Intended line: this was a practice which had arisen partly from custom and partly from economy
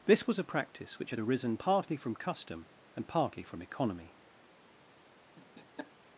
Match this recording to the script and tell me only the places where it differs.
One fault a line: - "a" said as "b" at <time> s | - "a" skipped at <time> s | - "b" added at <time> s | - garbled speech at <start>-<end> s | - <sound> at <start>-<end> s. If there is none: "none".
- laugh at 5.4-5.9 s